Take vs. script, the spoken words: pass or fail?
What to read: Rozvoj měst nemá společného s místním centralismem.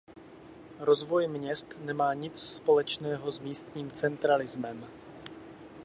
fail